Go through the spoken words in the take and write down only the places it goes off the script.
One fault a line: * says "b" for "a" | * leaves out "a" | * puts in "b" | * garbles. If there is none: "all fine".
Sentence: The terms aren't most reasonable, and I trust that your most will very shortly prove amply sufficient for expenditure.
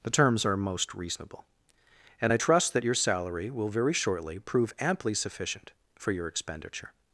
* says "are" for "aren't"
* says "salary" for "most"
* puts in "your"